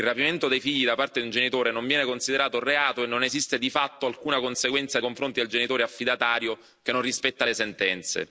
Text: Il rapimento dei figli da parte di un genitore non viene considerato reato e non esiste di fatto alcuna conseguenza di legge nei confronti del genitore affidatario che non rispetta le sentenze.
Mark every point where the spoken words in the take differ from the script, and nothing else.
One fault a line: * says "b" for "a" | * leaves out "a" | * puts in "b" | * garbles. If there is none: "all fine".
* leaves out "di legge nei"